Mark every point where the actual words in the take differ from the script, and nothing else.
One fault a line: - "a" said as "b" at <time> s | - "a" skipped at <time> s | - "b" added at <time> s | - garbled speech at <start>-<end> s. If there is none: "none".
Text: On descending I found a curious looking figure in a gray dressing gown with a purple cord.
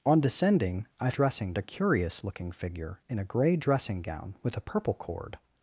- "found" said as "dressing" at 1.1 s